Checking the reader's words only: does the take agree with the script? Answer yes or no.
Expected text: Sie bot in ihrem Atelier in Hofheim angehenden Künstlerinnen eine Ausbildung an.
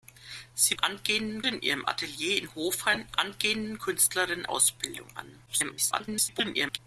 no